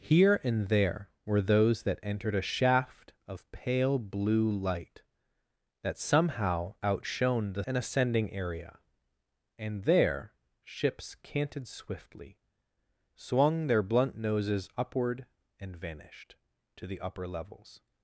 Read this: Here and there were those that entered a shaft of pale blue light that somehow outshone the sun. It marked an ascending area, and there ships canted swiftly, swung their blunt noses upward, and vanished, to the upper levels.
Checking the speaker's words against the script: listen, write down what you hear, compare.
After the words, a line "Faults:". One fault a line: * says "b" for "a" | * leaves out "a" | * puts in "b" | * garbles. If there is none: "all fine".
Here and there were those that entered a shaft of pale blue light that somehow outshone the an ascending area, and there ships canted swiftly, swung their blunt noses upward, and vanished, to the upper levels.
Faults:
* leaves out "sun It marked"